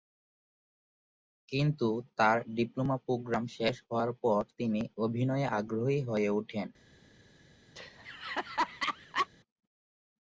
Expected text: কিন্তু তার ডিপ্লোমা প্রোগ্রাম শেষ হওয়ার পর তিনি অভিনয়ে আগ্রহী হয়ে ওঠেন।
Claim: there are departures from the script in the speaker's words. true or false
false